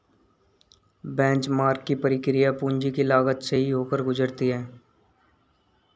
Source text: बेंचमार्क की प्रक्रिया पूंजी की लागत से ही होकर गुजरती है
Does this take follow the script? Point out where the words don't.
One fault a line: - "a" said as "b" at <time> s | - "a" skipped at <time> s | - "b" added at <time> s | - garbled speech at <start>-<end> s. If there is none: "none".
none